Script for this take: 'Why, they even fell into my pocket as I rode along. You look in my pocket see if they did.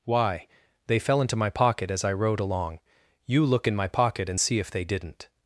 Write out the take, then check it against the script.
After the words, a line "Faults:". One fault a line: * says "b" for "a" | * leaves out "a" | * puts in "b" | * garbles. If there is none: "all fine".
'Why, they fell into my pocket as I rode along. You look in my pocket and see if they didn't.
Faults:
* leaves out "even"
* puts in "and"
* says "didn't" for "did"